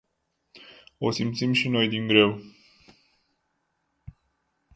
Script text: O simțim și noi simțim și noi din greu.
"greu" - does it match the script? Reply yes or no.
yes